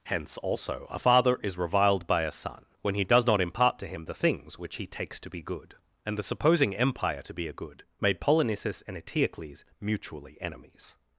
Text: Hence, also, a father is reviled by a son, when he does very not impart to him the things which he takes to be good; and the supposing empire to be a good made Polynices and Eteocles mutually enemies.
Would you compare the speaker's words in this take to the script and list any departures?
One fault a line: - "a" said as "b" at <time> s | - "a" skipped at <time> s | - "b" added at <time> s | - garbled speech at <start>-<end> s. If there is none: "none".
- "very" skipped at 3.3 s